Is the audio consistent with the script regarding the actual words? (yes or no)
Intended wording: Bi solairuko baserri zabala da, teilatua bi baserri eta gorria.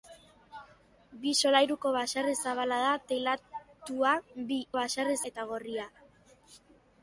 yes